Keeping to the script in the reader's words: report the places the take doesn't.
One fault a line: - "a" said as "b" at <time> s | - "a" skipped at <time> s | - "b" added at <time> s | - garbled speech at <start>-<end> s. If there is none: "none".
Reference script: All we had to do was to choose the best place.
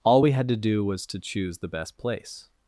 none